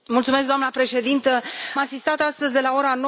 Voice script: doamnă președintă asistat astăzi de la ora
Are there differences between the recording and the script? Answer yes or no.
no